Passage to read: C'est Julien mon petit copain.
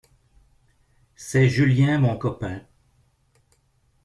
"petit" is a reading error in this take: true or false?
true